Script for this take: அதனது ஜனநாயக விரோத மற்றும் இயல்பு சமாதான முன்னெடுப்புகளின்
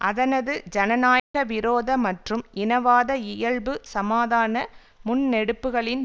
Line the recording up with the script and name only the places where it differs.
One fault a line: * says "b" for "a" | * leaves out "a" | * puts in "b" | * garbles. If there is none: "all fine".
* puts in "இனவாத"